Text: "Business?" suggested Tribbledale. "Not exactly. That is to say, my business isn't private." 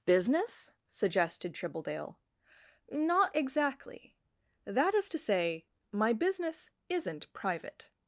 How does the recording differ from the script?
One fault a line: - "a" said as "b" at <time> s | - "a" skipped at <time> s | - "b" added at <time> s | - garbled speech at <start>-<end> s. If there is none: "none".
none